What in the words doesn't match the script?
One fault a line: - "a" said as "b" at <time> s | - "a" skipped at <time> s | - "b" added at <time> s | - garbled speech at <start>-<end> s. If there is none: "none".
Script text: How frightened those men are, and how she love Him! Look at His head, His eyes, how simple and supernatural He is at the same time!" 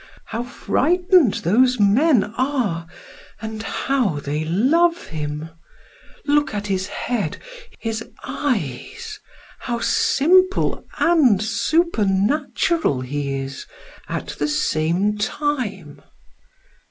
- "she" said as "they" at 4.2 s